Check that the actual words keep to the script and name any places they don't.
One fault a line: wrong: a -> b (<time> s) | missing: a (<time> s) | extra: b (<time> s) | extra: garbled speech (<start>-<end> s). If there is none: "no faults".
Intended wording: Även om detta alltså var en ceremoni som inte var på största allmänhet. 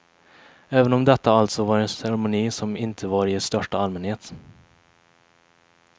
wrong: på -> i (3.3 s)